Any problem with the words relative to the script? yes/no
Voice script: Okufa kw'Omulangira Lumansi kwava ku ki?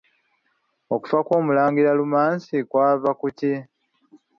no